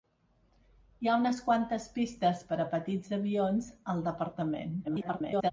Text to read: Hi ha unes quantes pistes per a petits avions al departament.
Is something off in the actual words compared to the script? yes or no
yes